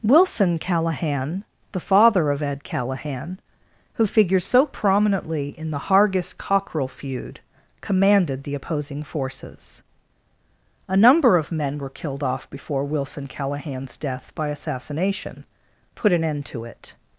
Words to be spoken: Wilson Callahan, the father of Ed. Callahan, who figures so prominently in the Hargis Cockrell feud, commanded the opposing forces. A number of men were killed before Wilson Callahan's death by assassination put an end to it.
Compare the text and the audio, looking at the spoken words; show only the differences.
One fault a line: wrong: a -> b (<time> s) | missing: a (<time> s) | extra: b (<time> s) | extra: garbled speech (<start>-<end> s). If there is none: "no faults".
extra: off (12.2 s)